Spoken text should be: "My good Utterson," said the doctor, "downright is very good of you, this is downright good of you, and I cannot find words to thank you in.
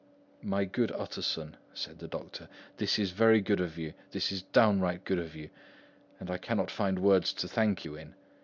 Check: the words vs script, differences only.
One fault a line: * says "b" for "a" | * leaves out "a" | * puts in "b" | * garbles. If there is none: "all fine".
* says "this" for "downright"